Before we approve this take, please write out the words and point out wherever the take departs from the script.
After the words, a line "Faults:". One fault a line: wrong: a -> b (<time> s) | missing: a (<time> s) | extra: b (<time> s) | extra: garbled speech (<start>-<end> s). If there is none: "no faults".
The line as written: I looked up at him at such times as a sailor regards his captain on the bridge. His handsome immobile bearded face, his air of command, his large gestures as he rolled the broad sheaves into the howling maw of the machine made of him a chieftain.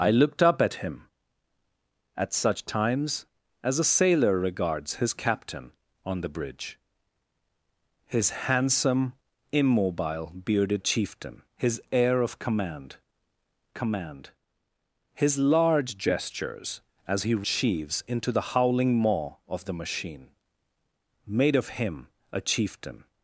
I looked up at him at such times as a sailor regards his captain on the bridge. His handsome immobile bearded chieftain, his air of command command, his large gestures as he sheaves into the howling maw of the machine made of him a chieftain.
Faults:
wrong: face -> chieftain (10.8 s)
extra: command (13.7 s)
missing: rolled the broad (17.5 s)